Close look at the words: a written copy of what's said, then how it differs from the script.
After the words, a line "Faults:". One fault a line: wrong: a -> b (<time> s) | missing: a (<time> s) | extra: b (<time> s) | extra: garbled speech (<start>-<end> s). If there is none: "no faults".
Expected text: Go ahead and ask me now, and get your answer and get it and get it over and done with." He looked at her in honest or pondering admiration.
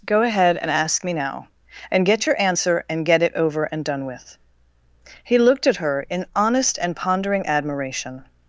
Go ahead and ask me now, and get your answer and get it over and done with." He looked at her in honest and pondering admiration.
Faults:
missing: and get it (3.3 s)
wrong: or -> and (6.8 s)